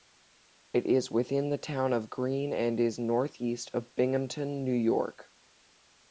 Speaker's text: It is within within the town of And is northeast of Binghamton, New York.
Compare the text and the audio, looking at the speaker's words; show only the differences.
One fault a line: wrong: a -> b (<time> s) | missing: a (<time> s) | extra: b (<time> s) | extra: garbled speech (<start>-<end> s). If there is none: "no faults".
missing: within (1.5 s)
extra: Greene (2.1 s)